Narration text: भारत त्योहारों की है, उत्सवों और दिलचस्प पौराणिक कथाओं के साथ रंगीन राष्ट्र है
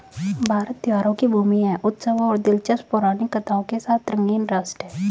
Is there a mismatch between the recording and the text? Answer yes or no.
yes